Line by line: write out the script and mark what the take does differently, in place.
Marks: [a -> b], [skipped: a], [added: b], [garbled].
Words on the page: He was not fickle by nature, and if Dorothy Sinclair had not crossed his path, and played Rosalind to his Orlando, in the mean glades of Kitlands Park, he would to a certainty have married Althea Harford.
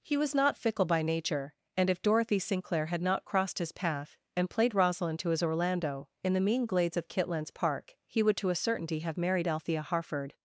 He was not fickle by nature, and if Dorothy Sinclair had not crossed his path, and played Rosalind to his Orlando, in the mean glades of Kitlands Park, he would to a certainty have married Althea Harford.